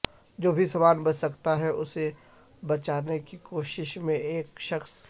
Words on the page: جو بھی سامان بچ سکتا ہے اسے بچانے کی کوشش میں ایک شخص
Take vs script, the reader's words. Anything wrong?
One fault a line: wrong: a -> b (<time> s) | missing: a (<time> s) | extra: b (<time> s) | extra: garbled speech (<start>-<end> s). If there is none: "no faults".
no faults